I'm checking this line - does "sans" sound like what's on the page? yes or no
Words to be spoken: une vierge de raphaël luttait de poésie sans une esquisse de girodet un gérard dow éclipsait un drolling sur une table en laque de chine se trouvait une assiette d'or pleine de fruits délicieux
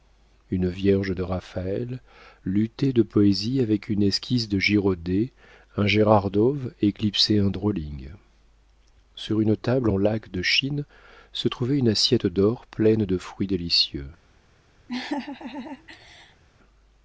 no